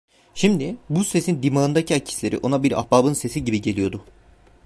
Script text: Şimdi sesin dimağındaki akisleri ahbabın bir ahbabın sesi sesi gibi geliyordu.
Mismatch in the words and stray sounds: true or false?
true